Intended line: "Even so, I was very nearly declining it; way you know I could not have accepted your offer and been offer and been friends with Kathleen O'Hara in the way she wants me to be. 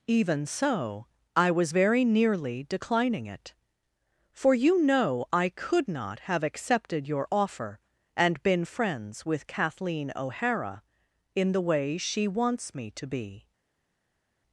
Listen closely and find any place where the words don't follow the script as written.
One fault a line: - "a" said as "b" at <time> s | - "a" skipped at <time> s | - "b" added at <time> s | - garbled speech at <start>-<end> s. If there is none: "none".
- "way" said as "for" at 4.3 s
- "offer and been" skipped at 8.6 s